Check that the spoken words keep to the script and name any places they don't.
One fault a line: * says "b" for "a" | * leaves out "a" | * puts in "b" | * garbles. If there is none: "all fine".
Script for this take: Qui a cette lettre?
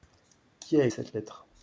all fine